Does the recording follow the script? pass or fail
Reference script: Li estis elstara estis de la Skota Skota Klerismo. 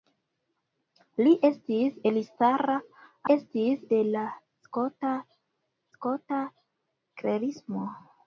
pass